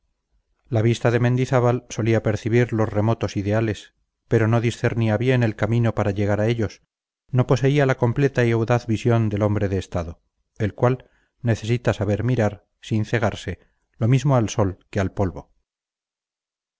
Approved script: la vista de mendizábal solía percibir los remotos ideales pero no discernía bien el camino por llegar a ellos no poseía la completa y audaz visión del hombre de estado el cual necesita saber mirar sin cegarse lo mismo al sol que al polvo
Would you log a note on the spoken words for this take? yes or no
yes